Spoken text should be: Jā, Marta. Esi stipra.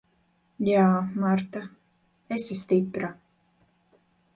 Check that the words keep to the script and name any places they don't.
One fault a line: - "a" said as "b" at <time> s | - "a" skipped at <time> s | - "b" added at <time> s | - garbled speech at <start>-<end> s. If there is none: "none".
none